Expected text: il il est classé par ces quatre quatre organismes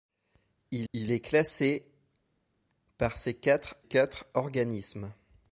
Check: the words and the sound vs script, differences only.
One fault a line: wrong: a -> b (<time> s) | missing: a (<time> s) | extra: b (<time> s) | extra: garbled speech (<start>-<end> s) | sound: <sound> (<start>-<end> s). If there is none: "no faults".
no faults